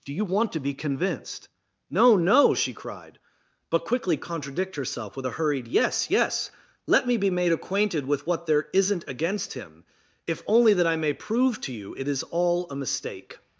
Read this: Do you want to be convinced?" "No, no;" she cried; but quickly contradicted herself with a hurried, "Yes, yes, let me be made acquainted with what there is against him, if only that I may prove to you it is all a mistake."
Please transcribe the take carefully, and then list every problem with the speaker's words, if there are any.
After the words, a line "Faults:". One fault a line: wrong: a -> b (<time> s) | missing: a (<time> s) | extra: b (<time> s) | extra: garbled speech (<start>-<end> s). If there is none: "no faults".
Do you want to be convinced?" "No, no;" she cried; but quickly contradict herself with a hurried, "Yes, yes, let me be made acquainted with what there isn't against him, if only that I may prove to you it is all a mistake."
Faults:
wrong: contradicted -> contradict (4.1 s)
wrong: is -> isn't (8.7 s)